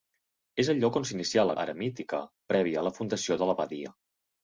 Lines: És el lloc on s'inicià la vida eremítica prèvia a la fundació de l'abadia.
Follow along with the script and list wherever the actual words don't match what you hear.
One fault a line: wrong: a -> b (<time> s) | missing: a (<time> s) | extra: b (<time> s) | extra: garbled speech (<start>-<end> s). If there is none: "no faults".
missing: vida (1.6 s)